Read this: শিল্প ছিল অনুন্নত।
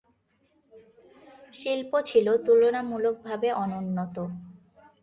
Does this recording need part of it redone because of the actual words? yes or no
yes